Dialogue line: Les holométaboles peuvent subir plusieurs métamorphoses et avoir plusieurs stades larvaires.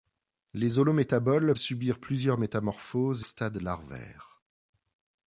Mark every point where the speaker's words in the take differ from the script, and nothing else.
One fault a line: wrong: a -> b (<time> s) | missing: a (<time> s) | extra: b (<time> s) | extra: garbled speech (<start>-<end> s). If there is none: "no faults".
missing: peuvent (1.5 s)
missing: et avoir plusieurs (3.2 s)